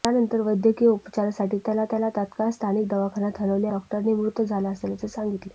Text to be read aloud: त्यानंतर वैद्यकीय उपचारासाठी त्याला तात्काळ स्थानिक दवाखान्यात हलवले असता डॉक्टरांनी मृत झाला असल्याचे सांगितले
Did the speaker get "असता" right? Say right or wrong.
wrong